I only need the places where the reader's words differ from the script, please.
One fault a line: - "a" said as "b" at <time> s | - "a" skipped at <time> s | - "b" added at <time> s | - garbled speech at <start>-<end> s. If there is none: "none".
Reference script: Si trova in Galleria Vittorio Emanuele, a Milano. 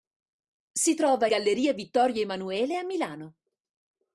- "in" skipped at 1.3 s